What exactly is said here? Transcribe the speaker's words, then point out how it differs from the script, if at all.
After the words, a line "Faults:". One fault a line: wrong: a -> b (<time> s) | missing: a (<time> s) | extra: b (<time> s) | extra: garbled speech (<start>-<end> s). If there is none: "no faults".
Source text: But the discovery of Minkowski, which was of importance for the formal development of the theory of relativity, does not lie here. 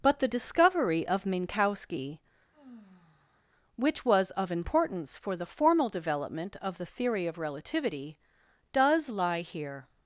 But the discovery of Minkowski, which was of importance for the formal development of the theory of relativity, does lie here.
Faults:
missing: not (9.1 s)